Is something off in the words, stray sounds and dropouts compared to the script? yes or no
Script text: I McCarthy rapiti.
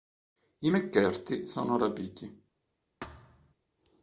yes